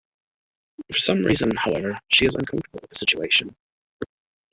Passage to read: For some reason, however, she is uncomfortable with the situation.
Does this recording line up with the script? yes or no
yes